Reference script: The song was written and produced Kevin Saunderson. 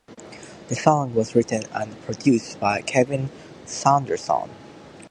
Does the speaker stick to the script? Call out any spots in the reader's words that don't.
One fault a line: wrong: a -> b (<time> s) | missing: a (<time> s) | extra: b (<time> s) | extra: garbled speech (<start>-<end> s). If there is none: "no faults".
extra: by (2.6 s)